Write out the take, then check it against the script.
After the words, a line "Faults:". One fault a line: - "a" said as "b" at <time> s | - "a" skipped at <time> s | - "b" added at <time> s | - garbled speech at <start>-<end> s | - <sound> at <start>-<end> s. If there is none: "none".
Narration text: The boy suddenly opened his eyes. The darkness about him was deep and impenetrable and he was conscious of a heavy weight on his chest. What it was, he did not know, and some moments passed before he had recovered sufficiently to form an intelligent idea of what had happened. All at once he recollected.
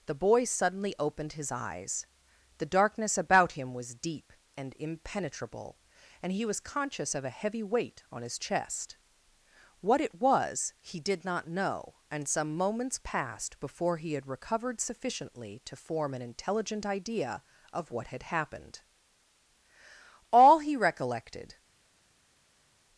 The boy suddenly opened his eyes. The darkness about him was deep and impenetrable and he was conscious of a heavy weight on his chest. What it was, he did not know, and some moments passed before he had recovered sufficiently to form an intelligent idea of what had happened. All he recollected.
Faults:
- "at once" skipped at 20.6 s